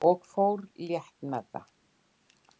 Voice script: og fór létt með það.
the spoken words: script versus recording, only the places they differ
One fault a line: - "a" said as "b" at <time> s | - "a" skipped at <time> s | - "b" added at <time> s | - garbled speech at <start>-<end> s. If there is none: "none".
none